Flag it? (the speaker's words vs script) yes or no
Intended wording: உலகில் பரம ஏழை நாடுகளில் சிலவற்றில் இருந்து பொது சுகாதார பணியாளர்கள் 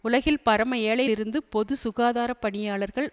yes